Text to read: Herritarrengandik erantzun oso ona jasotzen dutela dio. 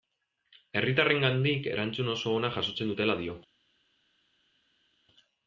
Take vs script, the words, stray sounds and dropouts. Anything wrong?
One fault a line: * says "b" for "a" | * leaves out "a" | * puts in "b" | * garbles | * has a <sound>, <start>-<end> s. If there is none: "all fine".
all fine